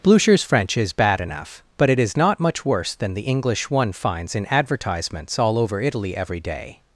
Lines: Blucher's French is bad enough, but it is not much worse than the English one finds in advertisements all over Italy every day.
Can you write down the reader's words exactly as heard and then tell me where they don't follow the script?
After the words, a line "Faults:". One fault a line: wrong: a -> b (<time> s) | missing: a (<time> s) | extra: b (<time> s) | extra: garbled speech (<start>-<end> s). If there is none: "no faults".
Blucher's French is bad enough, but it is not much worse than the English one finds in advertisements all over Italy every day.
Faults:
no faults